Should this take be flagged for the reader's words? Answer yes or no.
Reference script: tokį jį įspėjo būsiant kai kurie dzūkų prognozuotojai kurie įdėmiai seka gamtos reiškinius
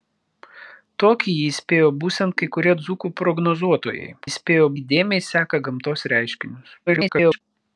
yes